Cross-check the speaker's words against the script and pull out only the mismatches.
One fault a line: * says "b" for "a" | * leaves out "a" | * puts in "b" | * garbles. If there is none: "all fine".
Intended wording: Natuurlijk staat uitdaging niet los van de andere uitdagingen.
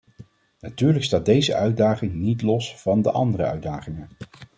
* puts in "deze"